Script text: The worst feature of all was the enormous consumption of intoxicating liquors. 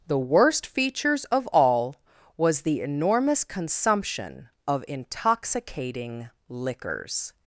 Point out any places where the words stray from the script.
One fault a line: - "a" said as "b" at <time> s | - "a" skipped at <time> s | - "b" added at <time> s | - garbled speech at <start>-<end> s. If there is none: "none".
- "feature" said as "features" at 0.7 s